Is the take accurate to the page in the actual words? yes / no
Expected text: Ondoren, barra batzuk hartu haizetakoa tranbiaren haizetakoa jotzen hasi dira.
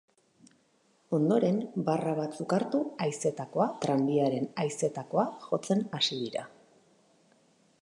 yes